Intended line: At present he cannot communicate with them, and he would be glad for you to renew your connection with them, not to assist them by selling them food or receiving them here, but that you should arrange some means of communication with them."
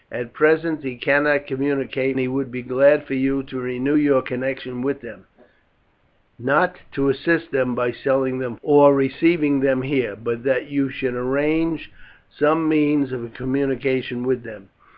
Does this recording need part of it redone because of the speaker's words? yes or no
yes